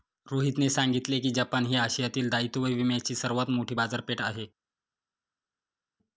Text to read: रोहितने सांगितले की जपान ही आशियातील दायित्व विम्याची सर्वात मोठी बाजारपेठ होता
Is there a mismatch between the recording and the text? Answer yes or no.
yes